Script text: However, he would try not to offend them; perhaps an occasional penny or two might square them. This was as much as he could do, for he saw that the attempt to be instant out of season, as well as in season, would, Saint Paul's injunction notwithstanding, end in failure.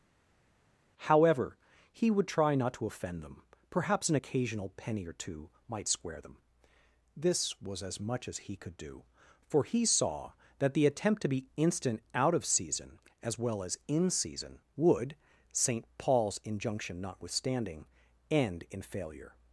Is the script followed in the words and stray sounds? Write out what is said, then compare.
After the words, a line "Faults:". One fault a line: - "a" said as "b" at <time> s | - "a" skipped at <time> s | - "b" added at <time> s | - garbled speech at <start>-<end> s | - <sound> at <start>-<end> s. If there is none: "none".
However, he would try not to offend them; perhaps an occasional penny or two might square them. This was as much as he could do, for he saw that the attempt to be instant out of season, as well as in season, would, Saint Paul's injunction notwithstanding, end in failure.
Faults:
none